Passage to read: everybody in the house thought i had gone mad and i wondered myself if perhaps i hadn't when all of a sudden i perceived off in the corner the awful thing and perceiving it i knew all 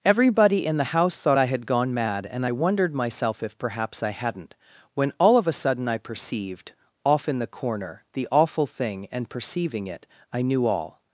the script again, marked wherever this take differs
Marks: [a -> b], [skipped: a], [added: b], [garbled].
everybody in the house thought i had gone mad and i wondered myself if perhaps i hadn't when all of a sudden i perceived off in the corner the awful thing and perceiving it i knew all